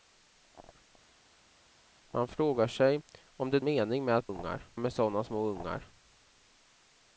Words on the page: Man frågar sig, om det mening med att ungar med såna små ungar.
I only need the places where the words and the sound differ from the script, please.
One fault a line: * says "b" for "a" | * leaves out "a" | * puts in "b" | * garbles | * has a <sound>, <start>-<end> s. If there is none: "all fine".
all fine